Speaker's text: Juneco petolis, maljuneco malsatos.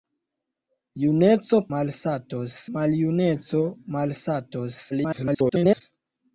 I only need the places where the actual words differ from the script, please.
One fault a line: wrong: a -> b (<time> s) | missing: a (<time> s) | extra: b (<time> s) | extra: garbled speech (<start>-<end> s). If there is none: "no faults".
wrong: petolis -> malsatos (1.8 s)
extra: garbled speech (4.9-5.8 s)